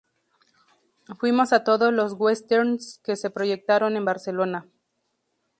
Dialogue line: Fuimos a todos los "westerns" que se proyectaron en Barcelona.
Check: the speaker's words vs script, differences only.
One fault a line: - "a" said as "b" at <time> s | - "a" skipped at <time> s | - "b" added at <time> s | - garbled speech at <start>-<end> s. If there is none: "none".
none